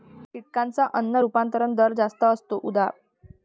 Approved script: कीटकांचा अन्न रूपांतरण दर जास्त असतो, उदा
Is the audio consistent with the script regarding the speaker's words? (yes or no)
yes